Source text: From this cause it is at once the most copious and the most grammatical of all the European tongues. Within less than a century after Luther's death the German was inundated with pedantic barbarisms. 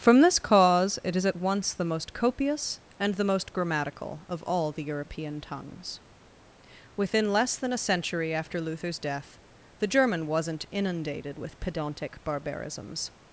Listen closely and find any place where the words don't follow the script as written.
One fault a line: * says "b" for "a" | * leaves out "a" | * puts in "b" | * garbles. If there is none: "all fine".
* says "wasn't" for "was"